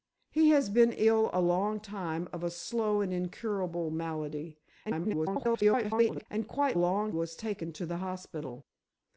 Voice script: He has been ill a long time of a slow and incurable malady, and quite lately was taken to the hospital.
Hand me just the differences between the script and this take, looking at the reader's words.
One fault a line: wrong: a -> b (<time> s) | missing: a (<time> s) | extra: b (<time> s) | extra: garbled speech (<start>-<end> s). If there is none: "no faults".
extra: garbled speech (4.8-6.3 s)
wrong: lately -> long (6.7 s)